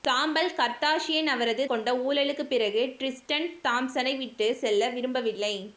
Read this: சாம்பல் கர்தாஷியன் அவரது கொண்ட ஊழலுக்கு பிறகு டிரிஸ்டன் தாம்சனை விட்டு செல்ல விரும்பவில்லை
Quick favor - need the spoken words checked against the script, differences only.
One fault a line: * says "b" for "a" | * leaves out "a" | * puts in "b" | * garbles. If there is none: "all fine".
all fine